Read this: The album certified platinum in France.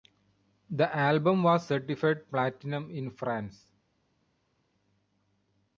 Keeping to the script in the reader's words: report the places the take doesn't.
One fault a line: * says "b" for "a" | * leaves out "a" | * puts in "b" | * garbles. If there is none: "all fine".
* puts in "was"